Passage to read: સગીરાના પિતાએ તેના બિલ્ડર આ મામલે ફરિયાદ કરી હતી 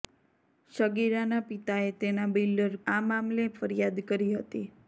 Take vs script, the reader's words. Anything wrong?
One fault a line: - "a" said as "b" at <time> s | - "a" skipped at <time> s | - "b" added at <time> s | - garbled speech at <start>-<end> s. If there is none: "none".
none